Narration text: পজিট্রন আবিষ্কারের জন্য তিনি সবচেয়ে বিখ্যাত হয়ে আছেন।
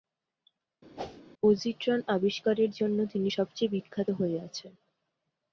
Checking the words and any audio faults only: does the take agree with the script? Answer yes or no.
no